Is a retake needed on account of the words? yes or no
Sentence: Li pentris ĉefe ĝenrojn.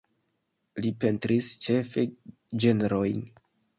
no